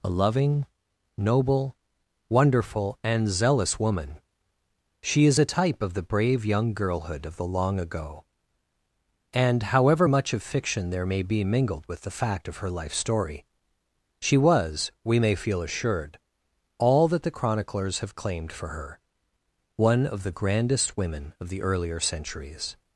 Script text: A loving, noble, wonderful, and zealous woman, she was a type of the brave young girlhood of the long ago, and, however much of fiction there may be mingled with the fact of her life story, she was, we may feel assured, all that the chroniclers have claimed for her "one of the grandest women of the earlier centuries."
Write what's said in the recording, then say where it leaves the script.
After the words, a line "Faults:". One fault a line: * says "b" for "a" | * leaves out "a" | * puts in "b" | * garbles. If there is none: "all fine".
A loving, noble, wonderful, and zealous woman, she is a type of the brave young girlhood of the long ago, and, however much of fiction there may be mingled with the fact of her life story, she was, we may feel assured, all that the chroniclers have claimed for her "one of the grandest women of the earlier centuries."
Faults:
* says "is" for "was"